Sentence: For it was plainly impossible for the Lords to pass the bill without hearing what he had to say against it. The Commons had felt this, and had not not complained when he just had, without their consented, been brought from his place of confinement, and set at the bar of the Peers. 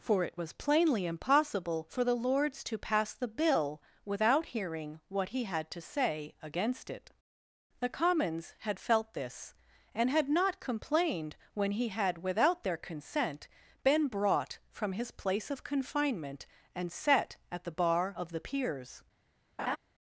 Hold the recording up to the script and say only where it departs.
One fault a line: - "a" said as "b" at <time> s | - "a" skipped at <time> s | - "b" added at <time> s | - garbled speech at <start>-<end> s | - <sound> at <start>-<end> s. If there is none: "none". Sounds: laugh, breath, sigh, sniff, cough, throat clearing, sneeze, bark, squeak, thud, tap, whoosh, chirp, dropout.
- "not" skipped at 10.6 s
- "just" skipped at 11.9 s
- "consented" said as "consent" at 12.8 s
- laugh at 19.6-19.8 s